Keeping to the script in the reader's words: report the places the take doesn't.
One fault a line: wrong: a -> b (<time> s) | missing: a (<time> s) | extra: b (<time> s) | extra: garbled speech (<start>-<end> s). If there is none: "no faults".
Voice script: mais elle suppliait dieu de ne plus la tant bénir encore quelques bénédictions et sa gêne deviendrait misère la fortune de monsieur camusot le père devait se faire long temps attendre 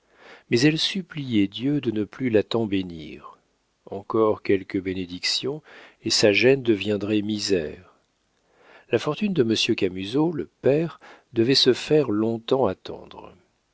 no faults